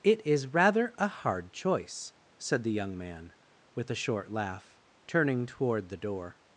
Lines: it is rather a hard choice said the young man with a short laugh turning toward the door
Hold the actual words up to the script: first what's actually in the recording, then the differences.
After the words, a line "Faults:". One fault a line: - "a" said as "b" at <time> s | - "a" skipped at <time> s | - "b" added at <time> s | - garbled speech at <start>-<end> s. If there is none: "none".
it is rather a hard choice said the young man with a short laugh turning toward the door
Faults:
none